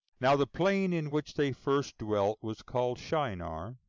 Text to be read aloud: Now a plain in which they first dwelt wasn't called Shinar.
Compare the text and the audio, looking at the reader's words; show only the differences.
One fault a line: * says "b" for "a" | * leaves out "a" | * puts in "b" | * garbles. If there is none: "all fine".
* says "the" for "a"
* says "was" for "wasn't"